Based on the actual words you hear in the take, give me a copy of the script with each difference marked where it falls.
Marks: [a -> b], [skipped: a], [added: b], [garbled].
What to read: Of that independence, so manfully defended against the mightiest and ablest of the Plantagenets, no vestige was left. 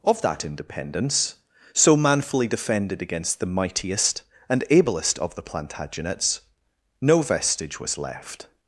Of that independence, so manfully defended against the mightiest and ablest of the Plantagenets, no vestige was left.